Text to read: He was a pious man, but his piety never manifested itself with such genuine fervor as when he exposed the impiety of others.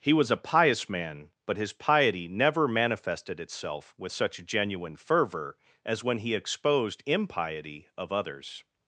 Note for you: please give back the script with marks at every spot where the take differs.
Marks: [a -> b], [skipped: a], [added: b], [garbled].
He was a pious man, but his piety never manifested itself with such genuine fervor as when he exposed [skipped: the] impiety of others.